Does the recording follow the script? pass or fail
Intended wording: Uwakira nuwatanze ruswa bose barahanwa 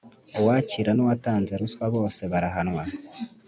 pass